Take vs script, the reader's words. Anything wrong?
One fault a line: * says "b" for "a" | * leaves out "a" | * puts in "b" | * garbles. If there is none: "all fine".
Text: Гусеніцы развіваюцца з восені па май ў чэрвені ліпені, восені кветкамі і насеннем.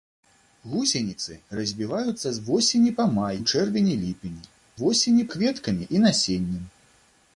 all fine